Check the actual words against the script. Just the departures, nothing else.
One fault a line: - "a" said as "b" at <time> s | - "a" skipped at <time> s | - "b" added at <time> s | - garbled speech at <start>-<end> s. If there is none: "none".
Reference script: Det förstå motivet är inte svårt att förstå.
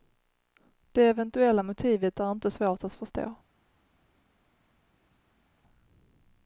- "förstå" said as "eventuella" at 1.1 s